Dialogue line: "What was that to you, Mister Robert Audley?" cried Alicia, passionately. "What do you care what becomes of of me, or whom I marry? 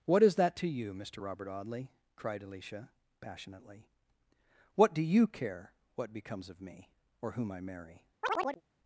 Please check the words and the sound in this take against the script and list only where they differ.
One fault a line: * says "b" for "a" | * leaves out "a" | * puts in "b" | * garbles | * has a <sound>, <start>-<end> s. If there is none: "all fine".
* says "is" for "was"
* leaves out "of"
* has a chirp, 8.2-8.6 s